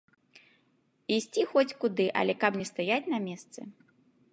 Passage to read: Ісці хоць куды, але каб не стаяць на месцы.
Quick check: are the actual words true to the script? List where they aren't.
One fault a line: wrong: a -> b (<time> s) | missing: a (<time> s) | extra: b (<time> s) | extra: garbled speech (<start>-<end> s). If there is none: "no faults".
no faults